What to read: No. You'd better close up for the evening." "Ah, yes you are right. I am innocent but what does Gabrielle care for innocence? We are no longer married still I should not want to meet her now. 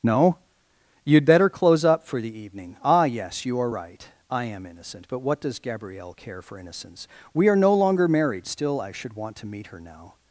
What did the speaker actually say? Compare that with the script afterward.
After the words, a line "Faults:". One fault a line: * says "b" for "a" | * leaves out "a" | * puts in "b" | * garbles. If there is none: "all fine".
No. You'd better close up for the evening." "Ah, yes you are right. I am innocent but what does Gabrielle care for innocence? We are no longer married still I should want to meet her now.
Faults:
* leaves out "not"